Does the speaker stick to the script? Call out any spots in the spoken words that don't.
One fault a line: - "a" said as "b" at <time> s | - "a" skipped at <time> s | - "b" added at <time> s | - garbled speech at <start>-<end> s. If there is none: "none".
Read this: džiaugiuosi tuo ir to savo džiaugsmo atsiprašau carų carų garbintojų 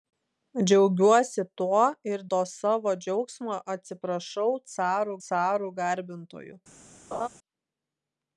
none